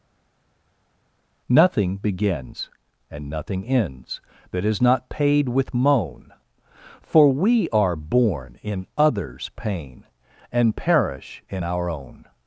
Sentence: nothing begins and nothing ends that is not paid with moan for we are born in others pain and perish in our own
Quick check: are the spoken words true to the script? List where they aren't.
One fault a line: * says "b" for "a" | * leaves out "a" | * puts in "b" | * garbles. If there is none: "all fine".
all fine